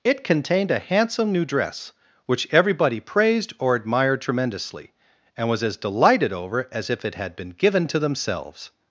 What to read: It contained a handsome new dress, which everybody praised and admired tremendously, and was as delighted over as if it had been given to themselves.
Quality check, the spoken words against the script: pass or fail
fail